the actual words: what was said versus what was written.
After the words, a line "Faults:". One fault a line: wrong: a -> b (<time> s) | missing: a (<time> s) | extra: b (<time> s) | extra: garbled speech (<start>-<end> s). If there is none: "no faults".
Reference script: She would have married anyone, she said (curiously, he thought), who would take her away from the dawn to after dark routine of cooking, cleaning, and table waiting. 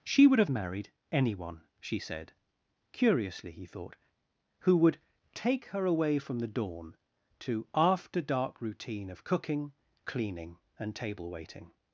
She would have married anyone, she said (curiously, he thought), who would take her away from the dawn to after dark routine of cooking, cleaning, and table waiting.
Faults:
no faults